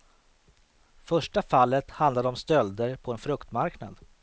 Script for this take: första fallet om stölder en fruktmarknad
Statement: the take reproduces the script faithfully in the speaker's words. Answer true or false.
false